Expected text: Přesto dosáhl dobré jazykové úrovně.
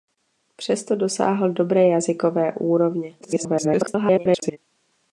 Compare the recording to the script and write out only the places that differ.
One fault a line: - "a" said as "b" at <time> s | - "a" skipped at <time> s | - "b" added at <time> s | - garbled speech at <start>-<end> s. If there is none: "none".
- garbled speech at 3.2-4.6 s